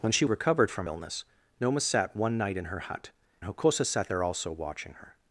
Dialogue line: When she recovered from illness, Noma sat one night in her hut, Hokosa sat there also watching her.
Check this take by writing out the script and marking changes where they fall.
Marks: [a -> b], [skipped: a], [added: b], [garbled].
When she recovered from illness, Noma sat one night in her hut, Hokosa sat there also watching her.